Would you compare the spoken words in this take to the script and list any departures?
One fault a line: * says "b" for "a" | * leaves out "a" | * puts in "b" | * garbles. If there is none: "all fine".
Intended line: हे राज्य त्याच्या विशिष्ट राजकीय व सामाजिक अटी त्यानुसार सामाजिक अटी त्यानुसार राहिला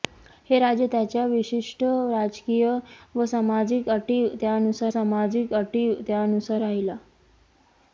all fine